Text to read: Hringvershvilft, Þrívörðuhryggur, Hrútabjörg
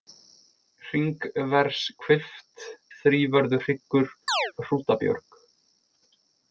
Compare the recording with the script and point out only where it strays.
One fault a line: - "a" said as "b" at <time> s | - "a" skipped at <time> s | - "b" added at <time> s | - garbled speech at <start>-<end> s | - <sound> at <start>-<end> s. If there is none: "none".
- chirp at 4.3-4.5 s